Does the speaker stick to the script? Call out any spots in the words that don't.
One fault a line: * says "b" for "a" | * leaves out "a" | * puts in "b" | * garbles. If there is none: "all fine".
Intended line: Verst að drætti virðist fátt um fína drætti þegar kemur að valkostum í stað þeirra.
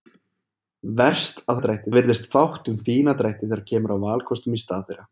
all fine